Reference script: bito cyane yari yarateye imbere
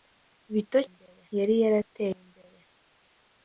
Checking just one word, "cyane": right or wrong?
wrong